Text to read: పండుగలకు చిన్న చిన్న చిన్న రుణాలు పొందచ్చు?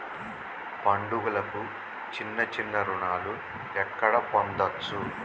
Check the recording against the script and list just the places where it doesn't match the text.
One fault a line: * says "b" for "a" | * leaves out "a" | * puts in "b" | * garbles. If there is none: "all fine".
* says "రుణాలు ఎక్కడ" for "చిన్న రుణాలు"